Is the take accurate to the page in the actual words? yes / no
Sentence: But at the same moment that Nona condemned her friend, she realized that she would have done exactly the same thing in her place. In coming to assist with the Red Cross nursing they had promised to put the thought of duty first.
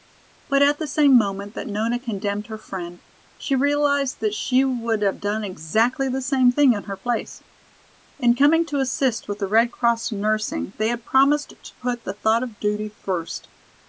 yes